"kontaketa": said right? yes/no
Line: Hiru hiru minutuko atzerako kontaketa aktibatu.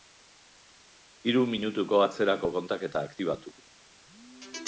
yes